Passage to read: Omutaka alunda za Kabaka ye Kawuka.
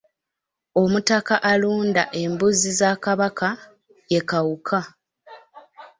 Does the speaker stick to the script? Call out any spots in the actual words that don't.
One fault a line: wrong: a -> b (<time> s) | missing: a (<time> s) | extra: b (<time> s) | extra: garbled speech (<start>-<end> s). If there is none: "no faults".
extra: embuzi (2.2 s)